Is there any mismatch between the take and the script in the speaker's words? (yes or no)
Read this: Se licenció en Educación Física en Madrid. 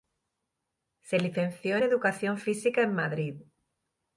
no